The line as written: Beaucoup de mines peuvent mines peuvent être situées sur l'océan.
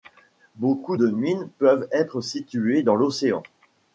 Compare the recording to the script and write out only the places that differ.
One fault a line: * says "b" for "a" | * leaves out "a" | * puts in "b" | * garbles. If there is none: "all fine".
* leaves out "mines peuvent"
* says "dans" for "sur"